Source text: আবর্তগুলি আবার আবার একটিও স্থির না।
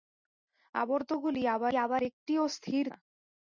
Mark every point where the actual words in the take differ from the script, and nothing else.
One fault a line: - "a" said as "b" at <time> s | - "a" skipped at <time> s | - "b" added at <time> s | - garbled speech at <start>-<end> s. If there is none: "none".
none